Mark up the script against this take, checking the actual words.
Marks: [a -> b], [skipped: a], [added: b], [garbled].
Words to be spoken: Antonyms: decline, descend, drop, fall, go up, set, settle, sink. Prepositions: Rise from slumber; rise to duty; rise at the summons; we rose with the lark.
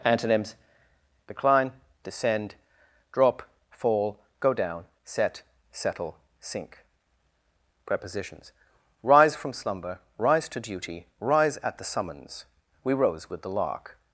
Antonyms: decline, descend, drop, fall, go [up, -> down] set, settle, sink. Prepositions: Rise from slumber; rise to duty; rise at the summons; we rose with the lark.